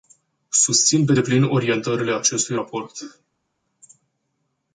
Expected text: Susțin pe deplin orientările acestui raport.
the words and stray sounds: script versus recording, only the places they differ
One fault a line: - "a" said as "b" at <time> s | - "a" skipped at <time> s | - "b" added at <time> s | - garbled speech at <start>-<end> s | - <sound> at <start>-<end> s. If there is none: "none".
none